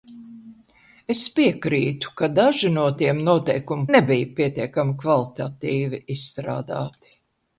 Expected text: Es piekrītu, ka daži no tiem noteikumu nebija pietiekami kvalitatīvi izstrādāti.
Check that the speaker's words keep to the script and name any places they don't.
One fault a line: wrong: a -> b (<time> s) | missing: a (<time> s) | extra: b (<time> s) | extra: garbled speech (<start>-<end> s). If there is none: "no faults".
no faults